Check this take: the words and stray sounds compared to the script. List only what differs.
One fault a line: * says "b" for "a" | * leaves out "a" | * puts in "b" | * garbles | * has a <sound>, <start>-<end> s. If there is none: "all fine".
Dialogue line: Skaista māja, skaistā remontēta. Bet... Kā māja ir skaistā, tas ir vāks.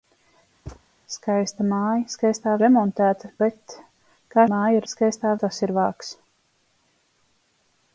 * has a thud, 0.7-0.8 s